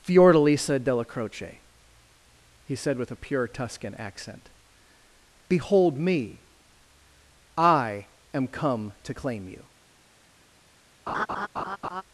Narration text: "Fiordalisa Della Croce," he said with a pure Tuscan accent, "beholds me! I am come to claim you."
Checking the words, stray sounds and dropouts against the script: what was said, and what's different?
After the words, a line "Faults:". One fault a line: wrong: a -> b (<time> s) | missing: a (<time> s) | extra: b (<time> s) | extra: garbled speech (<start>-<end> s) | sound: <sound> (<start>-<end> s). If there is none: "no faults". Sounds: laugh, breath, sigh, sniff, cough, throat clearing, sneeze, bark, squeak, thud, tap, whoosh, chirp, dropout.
"Fiordalisa Della Croce," he said with a pure Tuscan accent, "behold me! I am come to claim you."
Faults:
wrong: beholds -> behold (5.5 s)
sound: laugh (11.1-12.0 s)